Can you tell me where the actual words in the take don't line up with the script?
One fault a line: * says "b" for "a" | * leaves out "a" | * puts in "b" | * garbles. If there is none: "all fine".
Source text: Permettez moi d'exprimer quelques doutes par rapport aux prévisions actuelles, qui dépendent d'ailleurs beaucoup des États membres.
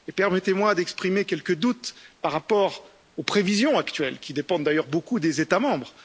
all fine